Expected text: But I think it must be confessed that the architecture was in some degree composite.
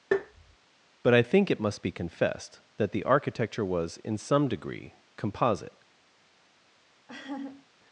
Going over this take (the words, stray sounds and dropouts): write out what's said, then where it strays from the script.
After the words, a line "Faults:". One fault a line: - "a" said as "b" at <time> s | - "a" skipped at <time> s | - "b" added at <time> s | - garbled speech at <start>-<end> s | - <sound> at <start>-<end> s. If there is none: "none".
But I think it must be confessed that the architecture was in some degree composite.
Faults:
- tap at 0.1-0.6 s
- laugh at 7.1-7.7 s